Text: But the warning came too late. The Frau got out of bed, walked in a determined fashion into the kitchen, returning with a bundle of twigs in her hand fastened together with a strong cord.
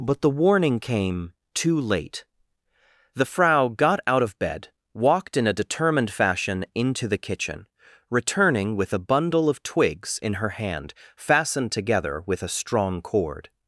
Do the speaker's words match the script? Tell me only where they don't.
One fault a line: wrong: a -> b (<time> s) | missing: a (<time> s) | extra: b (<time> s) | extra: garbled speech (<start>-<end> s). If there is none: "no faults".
no faults